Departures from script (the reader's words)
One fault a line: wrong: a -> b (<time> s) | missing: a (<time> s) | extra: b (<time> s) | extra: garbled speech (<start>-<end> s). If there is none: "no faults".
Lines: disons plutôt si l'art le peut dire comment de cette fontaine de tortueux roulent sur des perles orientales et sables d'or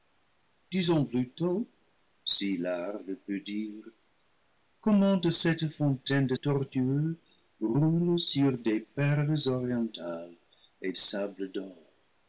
no faults